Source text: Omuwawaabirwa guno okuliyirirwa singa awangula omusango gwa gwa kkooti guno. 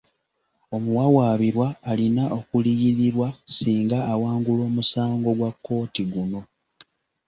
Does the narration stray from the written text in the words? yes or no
yes